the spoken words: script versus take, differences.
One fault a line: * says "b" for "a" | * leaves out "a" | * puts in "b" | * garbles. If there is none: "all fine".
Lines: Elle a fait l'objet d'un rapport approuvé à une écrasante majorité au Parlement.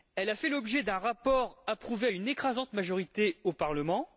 all fine